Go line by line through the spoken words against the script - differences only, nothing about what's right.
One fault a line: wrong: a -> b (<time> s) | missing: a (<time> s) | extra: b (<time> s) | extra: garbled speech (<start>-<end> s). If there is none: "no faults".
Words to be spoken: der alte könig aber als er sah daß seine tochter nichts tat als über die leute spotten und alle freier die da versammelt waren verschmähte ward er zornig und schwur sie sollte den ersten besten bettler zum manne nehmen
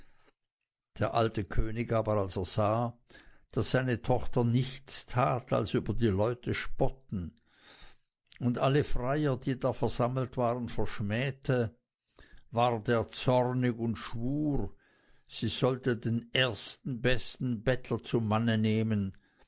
no faults